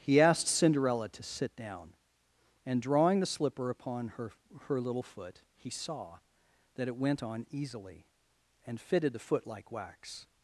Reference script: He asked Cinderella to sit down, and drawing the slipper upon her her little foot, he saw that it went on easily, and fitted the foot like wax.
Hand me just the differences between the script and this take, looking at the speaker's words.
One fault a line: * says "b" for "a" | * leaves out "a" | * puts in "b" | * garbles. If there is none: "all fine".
all fine